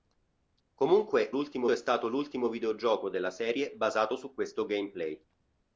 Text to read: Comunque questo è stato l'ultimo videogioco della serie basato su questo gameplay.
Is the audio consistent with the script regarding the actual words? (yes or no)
no